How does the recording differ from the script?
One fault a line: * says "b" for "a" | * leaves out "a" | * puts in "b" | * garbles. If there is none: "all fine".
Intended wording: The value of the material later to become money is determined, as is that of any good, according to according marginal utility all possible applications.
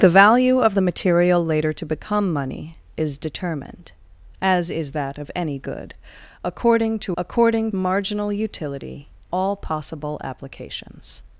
all fine